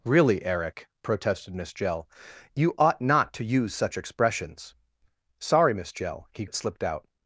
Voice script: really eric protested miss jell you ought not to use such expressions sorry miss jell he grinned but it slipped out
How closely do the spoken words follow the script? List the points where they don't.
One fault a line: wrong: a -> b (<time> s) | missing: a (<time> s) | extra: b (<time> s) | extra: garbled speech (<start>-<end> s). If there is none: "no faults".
missing: grinned but (6.5 s)